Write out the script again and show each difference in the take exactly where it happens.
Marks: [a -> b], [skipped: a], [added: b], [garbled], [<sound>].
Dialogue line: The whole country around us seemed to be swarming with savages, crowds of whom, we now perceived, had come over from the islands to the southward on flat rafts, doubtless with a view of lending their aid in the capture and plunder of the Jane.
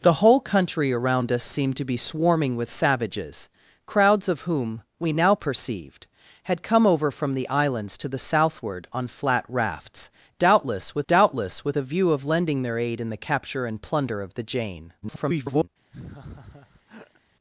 The whole country around us seemed to be swarming with savages, crowds of whom, we now perceived, had come over from the islands to the southward on flat rafts, doubtless with [added: doubtless with] a view of lending their aid in the capture and plunder of the Jane. [garbled] [laugh]